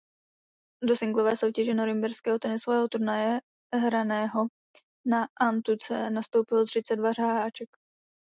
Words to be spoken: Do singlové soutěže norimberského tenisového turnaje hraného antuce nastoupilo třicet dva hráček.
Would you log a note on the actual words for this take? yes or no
yes